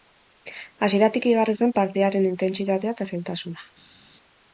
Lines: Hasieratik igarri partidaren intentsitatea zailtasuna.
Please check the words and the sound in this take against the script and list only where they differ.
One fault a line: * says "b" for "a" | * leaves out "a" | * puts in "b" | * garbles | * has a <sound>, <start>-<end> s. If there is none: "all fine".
* puts in "zen"
* puts in "eta"